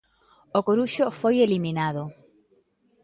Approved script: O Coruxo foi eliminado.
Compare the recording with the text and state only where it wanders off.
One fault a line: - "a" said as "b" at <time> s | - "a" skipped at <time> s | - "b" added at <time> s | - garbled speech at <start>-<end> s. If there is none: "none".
none